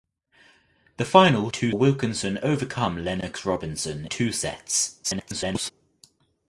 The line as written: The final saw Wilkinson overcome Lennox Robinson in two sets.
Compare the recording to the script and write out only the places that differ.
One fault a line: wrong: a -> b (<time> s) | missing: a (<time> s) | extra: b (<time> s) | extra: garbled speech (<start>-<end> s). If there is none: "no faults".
wrong: saw -> two (1.5 s)
missing: in (4.1 s)
extra: garbled speech (5.0-5.7 s)